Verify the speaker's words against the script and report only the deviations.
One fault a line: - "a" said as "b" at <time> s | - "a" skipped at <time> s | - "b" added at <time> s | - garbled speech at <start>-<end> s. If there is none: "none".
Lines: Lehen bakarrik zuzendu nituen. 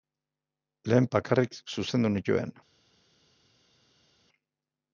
none